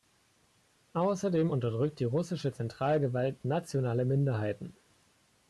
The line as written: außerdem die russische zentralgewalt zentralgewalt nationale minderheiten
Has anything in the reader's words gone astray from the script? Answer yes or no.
yes